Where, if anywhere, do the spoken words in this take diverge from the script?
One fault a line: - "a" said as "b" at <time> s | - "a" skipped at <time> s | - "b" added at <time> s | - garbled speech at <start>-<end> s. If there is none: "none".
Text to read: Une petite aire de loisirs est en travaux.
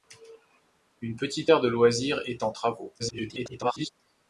- garbled speech at 3.0-3.9 s